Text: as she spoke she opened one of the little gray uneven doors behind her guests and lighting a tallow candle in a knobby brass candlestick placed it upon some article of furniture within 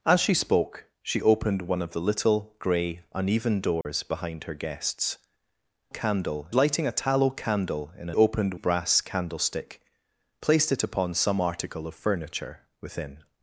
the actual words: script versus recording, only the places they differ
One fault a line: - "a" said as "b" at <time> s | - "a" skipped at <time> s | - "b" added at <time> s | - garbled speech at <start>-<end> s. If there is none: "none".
- "and" said as "candle" at 5.9 s
- "knobby" said as "opened" at 8.1 s